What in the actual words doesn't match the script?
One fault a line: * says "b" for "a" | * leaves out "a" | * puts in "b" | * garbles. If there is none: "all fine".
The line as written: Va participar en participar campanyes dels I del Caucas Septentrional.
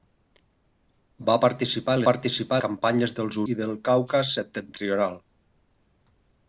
all fine